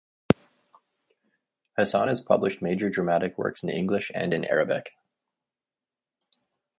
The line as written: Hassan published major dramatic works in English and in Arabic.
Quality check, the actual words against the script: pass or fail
fail